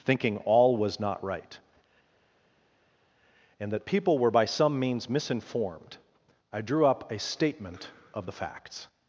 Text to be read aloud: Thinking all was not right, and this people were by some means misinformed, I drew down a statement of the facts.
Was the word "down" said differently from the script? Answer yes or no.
yes